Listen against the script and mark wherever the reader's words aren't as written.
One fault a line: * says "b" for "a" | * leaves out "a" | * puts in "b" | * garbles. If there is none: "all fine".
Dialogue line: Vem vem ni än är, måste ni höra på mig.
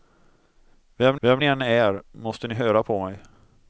all fine